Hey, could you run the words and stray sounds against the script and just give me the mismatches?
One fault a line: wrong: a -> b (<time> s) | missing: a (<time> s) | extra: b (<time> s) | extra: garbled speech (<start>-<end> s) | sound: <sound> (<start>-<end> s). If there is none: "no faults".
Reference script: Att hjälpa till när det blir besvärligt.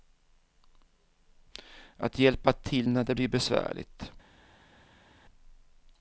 no faults